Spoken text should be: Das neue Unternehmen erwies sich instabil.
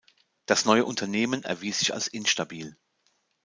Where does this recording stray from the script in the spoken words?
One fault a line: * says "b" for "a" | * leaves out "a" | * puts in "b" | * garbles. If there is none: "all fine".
* puts in "als"